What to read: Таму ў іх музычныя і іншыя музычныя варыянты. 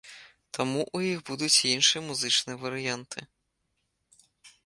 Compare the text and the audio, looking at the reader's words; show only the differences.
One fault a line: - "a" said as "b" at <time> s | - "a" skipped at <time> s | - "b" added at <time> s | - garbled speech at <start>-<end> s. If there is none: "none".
- "музычныя" said as "будуць" at 1.3 s